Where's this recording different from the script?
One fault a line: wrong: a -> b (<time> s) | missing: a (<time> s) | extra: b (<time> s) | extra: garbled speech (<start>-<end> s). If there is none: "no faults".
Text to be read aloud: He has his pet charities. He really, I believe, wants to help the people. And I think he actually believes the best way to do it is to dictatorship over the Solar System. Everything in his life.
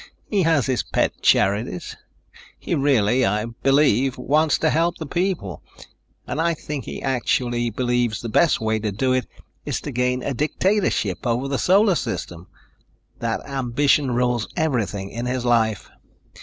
extra: gain a (9.9 s)
extra: That ambition rules (13.2 s)